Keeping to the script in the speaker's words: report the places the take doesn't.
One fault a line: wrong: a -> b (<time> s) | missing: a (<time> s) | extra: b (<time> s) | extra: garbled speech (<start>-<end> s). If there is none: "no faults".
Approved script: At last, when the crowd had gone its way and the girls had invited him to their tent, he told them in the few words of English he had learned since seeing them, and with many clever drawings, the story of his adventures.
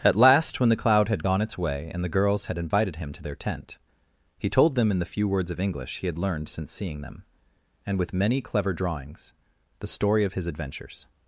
wrong: crowd -> cloud (0.8 s)